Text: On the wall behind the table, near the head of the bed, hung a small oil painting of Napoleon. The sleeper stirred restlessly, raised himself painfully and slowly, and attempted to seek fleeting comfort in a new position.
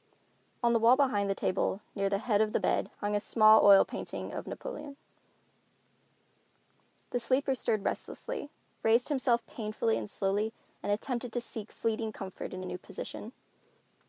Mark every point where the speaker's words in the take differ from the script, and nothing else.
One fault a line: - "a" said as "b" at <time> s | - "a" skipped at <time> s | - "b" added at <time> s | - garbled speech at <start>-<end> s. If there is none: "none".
none